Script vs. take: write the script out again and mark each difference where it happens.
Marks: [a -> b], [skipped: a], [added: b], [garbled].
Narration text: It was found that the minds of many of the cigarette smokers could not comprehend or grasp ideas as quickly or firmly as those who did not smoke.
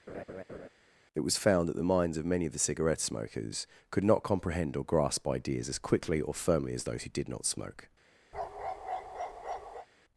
It was found that the minds of many of the cigarette smokers could not comprehend or grasp ideas as quickly or firmly as those who did not smoke.